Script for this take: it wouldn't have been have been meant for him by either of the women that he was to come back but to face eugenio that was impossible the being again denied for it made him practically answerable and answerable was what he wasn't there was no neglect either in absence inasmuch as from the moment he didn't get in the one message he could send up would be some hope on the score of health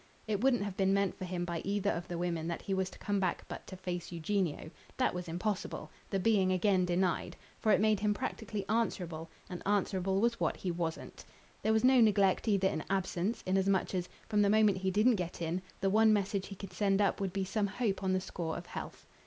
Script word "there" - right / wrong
right